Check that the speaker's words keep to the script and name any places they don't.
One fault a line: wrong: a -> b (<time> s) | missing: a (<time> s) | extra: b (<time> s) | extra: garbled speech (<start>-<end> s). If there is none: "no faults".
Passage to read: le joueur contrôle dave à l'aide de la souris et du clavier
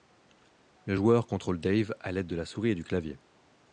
no faults